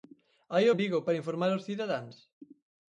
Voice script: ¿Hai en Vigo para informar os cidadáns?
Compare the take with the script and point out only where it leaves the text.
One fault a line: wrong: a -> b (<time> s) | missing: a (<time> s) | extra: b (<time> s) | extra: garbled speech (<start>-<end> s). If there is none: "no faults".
no faults